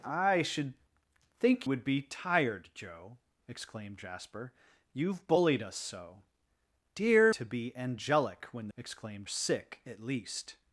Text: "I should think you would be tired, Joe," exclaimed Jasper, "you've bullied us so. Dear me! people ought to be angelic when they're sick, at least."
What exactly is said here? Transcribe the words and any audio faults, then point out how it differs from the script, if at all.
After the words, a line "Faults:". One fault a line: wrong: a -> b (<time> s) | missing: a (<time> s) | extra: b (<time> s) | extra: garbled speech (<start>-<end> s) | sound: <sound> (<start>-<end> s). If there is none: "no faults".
"I should think would be tired, Joe," exclaimed Jasper, "you've bullied us so. Dear to be angelic when exclaimed sick, at least."
Faults:
missing: you (1.7 s)
missing: me people ought (7.3 s)
wrong: they're -> exclaimed (8.8 s)